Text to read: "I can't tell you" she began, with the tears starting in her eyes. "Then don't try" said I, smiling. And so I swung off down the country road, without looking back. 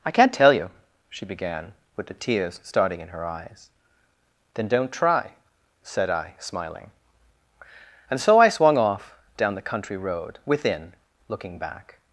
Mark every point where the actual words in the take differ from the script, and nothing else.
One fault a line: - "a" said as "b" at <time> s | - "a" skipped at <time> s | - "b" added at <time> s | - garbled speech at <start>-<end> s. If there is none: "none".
- "without" said as "within" at 10.4 s